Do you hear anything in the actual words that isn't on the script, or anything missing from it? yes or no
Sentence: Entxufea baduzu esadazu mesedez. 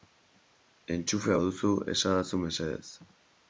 no